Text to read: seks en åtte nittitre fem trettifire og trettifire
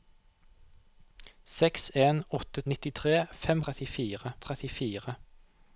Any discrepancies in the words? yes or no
no